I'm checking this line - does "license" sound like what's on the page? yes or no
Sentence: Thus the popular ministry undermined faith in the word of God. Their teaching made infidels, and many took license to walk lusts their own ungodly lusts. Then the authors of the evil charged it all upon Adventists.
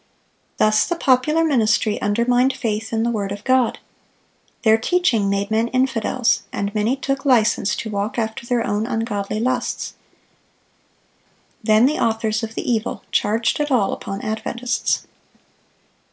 yes